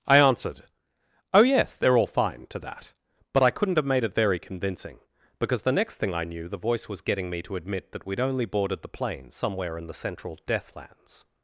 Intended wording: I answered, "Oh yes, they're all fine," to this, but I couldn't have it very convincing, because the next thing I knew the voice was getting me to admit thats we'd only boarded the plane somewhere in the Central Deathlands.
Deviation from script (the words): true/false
true